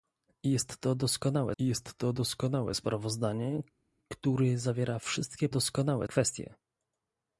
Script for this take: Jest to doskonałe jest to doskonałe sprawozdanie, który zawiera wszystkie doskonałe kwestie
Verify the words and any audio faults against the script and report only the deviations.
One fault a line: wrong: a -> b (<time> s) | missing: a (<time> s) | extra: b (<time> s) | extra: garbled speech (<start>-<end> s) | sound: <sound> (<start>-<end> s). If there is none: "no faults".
no faults